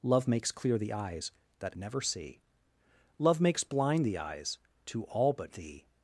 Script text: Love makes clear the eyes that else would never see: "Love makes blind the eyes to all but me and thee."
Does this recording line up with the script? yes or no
no